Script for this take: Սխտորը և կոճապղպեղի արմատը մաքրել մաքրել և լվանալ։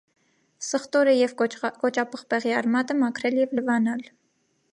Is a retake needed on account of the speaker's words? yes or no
yes